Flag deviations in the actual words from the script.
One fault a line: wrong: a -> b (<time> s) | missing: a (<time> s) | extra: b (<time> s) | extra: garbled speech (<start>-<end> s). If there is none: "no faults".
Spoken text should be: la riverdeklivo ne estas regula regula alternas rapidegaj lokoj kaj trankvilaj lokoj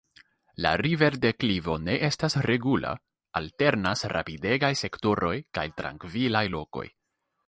missing: regula (2.9 s)
wrong: lokoj -> sektoroj (4.8 s)